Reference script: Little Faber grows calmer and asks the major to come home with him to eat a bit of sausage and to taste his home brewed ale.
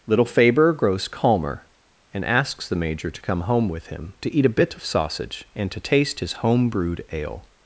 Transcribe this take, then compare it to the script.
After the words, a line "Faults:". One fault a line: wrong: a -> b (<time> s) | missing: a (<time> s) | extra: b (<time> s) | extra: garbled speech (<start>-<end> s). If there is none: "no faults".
Little Faber grows calmer and asks the major to come home with him to eat a bit of sausage and to taste his home brewed ale.
Faults:
no faults